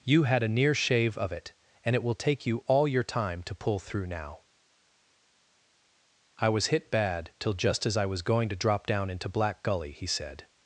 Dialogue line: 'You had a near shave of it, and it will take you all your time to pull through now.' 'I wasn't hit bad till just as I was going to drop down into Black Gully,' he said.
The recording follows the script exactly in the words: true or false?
false